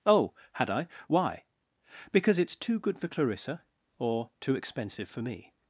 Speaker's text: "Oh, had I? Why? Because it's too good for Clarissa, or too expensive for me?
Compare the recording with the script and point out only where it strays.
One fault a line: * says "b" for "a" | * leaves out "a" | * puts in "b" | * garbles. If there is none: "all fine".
all fine